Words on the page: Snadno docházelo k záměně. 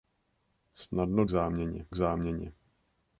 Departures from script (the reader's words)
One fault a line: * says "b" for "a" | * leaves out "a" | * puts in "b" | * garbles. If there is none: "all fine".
* says "záměně" for "docházelo"